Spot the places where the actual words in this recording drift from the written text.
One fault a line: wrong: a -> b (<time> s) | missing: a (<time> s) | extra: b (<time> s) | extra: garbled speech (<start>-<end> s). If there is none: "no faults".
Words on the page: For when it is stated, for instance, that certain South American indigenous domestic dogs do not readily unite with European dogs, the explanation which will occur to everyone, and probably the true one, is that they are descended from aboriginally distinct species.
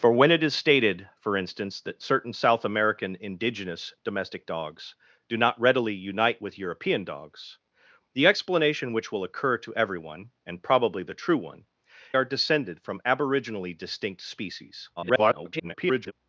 missing: is that they (11.7 s)
extra: garbled speech (15.0-16.1 s)